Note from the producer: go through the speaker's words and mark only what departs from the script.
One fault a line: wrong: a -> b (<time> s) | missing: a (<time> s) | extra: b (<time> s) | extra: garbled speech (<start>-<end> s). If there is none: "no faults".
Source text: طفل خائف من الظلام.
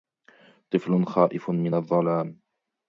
no faults